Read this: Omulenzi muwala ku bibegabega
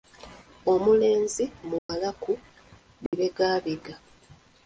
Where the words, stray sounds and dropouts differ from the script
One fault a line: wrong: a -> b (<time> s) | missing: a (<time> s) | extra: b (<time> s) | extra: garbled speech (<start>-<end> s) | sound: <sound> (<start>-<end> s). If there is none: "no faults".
sound: dropout (1.8-1.9 s)
sound: dropout (3.1-3.1 s)